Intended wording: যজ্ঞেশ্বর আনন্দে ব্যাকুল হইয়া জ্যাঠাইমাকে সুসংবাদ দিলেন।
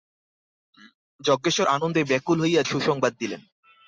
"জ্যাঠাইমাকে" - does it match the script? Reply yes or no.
no